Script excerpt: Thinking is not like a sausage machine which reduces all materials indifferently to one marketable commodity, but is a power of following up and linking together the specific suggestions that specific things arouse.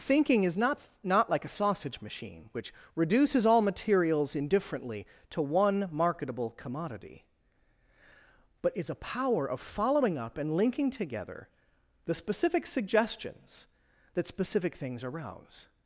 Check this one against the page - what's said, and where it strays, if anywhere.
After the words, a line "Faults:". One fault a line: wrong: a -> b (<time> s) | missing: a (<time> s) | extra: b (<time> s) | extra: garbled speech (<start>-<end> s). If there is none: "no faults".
Thinking is not not like a sausage machine which reduces all materials indifferently to one marketable commodity, but is a power of following up and linking together the specific suggestions that specific things arouse.
Faults:
extra: not (1.0 s)